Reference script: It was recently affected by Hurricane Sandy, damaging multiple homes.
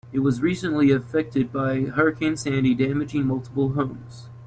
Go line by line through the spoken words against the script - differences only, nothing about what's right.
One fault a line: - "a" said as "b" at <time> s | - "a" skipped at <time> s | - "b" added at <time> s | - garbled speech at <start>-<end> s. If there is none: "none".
none